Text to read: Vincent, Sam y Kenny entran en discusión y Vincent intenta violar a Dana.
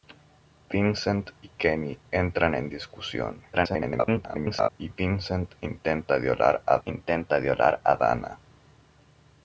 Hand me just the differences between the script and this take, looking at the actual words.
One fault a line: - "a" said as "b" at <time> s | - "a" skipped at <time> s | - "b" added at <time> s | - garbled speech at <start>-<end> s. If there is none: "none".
- "Sam" skipped at 1.3 s
- garbled speech at 3.5-4.7 s
- "intenta violar a" added at 6.8 s